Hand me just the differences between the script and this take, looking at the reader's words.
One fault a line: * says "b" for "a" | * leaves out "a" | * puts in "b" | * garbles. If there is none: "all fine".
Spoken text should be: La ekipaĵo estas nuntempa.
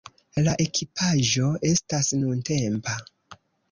all fine